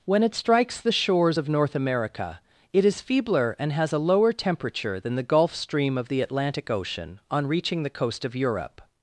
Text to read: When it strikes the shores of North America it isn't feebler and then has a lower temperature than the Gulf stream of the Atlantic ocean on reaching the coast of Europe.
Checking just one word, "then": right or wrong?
wrong